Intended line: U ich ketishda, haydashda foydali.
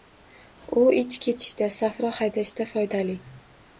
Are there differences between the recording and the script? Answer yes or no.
yes